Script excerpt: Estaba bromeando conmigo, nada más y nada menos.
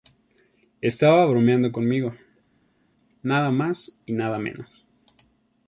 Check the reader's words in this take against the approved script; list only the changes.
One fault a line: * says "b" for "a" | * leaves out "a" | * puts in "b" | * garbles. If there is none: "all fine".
all fine